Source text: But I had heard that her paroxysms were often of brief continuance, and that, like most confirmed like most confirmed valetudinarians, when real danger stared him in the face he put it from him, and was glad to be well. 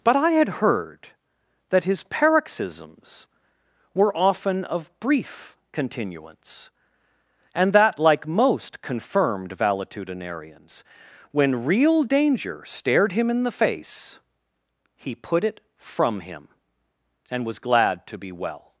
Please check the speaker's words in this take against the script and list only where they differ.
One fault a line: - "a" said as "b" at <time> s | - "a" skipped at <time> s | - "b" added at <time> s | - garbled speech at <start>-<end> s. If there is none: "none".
- "her" said as "his" at 1.8 s
- "like most confirmed" skipped at 9.6 s